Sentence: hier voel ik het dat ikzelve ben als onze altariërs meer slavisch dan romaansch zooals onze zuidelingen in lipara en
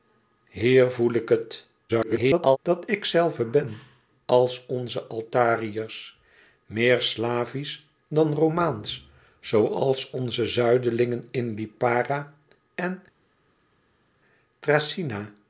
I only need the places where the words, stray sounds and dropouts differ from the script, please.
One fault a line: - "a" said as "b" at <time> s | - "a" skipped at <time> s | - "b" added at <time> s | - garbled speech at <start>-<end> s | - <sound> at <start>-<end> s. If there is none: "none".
- garbled speech at 1.9-2.6 s